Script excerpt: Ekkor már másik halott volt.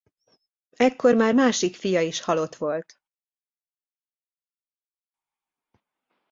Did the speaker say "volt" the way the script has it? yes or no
yes